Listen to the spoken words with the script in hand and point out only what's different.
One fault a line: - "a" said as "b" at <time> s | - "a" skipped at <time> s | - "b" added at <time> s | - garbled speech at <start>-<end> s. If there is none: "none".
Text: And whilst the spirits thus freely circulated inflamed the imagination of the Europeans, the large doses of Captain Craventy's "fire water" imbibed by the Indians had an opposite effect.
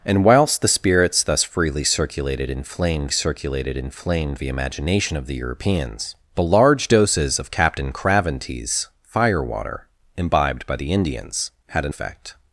- "circulated inflamed" added at 3.1 s
- "opposite" skipped at 11.9 s